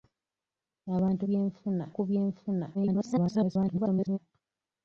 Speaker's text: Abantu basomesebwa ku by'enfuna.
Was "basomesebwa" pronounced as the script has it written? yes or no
no